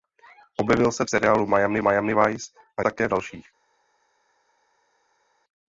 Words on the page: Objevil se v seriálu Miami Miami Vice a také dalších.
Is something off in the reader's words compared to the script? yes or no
no